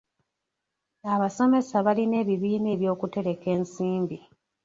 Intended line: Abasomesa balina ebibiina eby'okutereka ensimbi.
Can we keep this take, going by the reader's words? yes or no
yes